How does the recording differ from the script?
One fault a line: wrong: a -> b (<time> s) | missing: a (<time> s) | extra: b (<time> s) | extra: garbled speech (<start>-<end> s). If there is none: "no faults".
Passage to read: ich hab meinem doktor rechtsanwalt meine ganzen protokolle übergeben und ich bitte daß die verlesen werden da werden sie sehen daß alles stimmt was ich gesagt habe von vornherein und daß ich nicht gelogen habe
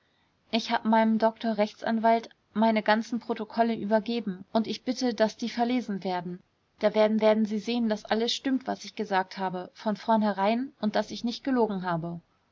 extra: werden (7.2 s)